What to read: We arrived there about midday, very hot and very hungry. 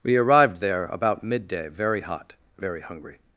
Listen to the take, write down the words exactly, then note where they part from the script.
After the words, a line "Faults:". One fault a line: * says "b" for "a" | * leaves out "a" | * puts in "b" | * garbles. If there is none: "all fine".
We arrived there about midday, very hot very hungry.
Faults:
* leaves out "and"